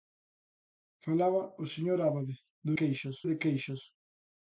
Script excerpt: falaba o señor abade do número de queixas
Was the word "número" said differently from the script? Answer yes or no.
yes